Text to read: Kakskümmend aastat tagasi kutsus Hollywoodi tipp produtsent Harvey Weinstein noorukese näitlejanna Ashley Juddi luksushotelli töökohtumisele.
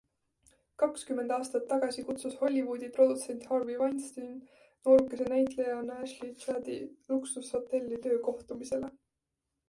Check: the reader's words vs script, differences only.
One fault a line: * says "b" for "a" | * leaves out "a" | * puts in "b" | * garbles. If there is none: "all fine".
* leaves out "tipp"